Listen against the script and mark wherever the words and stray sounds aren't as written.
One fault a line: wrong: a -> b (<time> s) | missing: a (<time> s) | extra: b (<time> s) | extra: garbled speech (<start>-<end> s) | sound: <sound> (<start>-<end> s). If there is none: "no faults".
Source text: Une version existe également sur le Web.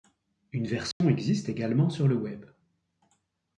sound: dropout (0.9-1.0 s)